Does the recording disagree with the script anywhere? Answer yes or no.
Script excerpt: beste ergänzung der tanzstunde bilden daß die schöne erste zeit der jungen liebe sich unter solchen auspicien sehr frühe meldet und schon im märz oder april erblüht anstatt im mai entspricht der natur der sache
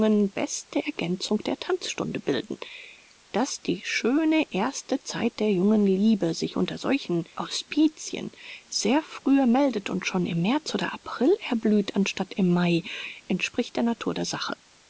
no